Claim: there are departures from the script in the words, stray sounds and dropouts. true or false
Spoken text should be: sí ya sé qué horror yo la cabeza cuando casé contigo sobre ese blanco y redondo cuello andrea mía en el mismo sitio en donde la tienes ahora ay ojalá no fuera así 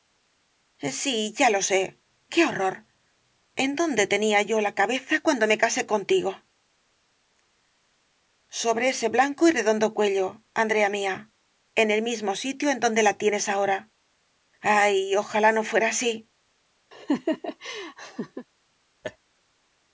true